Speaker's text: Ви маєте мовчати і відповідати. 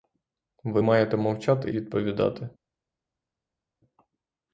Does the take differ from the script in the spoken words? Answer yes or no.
yes